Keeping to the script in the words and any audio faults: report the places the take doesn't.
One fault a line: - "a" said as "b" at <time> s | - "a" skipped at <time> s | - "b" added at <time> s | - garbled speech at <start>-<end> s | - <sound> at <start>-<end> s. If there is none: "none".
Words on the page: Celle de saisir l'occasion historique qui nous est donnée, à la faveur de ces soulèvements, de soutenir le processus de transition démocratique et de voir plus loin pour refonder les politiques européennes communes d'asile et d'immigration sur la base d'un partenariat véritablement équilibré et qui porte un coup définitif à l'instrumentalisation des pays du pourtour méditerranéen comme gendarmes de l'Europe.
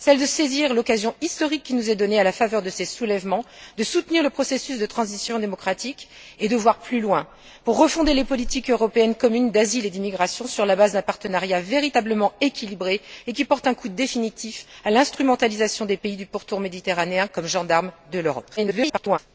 - garbled speech at 18.6-19.2 s